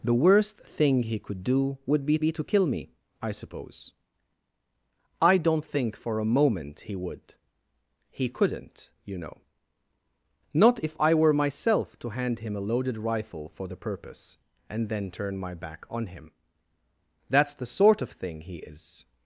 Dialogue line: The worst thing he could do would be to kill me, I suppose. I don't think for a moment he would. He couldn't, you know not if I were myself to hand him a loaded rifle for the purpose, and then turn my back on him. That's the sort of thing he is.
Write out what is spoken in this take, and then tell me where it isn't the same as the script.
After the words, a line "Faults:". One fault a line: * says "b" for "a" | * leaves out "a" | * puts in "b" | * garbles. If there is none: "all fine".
The worst thing he could do would be be to kill me, I suppose. I don't think for a moment he would. He couldn't, you know not if I were myself to hand him a loaded rifle for the purpose, and then turn my back on him. That's the sort of thing he is.
Faults:
* puts in "be"